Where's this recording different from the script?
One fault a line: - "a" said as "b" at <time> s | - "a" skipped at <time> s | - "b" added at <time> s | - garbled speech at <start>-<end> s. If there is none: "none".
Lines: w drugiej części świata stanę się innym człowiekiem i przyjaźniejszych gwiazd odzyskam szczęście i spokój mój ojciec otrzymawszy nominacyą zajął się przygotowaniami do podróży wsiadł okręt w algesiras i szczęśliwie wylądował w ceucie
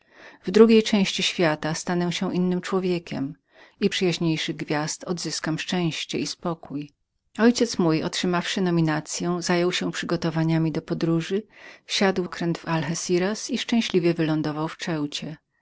none